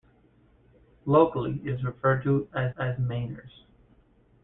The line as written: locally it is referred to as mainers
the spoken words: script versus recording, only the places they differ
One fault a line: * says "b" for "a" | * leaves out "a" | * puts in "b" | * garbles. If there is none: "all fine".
* puts in "as"